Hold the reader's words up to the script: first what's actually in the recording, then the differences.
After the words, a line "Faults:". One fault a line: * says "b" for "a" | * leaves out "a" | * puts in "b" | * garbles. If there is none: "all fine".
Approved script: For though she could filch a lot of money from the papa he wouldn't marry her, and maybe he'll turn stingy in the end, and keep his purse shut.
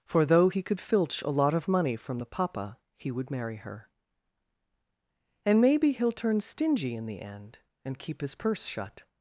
For though he could filch a lot of money from the papa he would marry her, and maybe he'll turn stingy in the end, and keep his purse shut.
Faults:
* says "he" for "she"
* says "would" for "wouldn't"